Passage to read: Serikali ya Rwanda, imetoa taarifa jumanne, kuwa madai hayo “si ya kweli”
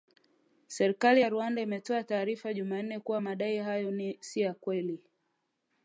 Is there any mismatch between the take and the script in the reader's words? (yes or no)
no